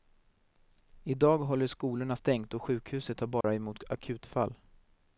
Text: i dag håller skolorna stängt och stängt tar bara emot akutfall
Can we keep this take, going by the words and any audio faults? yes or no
no